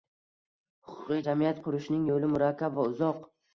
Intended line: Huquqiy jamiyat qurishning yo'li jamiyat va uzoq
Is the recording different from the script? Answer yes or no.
yes